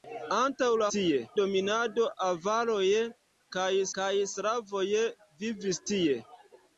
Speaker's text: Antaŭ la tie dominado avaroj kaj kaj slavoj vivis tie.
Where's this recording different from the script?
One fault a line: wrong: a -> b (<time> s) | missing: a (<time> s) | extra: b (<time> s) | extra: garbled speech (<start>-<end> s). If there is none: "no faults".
no faults